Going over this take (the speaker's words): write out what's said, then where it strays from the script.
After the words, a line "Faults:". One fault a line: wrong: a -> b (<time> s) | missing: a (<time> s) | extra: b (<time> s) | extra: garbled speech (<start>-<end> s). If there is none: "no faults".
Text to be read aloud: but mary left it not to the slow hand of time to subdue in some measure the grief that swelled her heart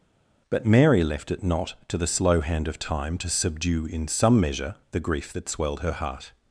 but mary left it not to the slow hand of time to subdue in some measure the grief that swelled her heart
Faults:
no faults